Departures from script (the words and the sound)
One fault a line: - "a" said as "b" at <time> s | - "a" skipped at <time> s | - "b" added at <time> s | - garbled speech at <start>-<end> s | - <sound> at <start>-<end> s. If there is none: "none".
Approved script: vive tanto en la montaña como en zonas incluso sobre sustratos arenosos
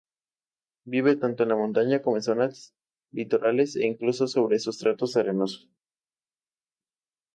- "litorales e" added at 3.1 s